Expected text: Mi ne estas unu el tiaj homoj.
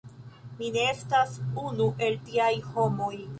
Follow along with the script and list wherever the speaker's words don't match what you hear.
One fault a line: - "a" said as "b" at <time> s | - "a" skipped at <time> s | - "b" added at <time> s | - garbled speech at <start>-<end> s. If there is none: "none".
none